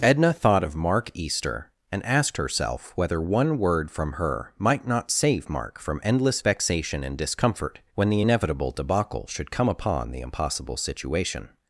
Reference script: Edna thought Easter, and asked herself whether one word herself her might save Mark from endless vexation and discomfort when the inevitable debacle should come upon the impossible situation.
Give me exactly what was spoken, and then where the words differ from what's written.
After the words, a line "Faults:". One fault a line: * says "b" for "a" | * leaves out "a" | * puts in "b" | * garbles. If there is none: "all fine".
Edna thought of Mark Easter, and asked herself whether one word from her might not save Mark from endless vexation and discomfort when the inevitable debacle should come upon the impossible situation.
Faults:
* puts in "of Mark"
* says "from" for "herself"
* puts in "not"